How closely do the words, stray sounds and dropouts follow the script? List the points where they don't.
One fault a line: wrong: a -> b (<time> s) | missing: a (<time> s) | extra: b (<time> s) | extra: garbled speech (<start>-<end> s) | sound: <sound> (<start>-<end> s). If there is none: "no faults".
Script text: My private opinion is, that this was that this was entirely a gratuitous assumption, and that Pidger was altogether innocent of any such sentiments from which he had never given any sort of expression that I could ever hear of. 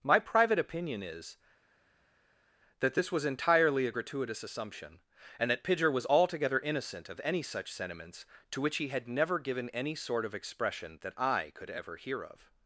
missing: that this was (3.2 s)
wrong: from -> to (8.5 s)